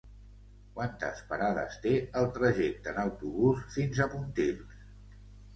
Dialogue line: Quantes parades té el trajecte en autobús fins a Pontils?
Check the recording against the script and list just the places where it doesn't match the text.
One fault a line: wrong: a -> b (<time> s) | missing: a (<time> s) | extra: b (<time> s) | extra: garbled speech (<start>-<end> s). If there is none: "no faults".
no faults